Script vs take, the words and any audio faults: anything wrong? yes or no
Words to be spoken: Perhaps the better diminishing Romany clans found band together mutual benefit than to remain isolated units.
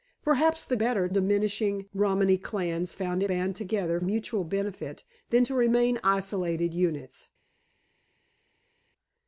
no